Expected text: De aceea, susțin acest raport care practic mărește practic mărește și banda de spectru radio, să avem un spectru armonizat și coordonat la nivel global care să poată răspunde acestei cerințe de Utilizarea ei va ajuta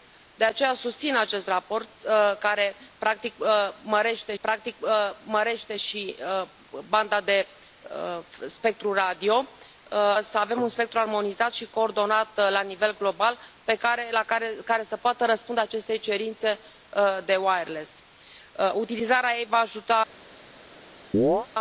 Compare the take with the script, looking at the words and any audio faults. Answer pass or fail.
fail